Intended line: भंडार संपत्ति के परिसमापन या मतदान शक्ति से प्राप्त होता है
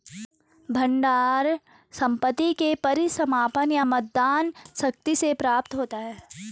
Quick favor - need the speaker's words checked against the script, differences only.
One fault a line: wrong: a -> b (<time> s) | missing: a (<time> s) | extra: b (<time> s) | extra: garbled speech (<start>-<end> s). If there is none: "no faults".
no faults